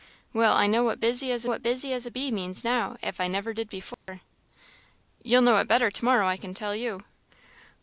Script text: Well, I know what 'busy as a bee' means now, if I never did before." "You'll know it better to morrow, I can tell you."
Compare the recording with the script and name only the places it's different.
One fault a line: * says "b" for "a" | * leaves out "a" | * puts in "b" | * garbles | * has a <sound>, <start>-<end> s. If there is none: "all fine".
* puts in "what busy as"
* has a dropout, 3.9-4.1 s